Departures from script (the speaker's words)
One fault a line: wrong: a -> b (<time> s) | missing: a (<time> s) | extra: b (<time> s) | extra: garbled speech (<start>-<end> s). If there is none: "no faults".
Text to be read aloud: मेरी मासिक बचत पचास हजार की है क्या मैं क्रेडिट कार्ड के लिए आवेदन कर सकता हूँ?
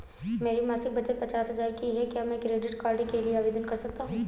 no faults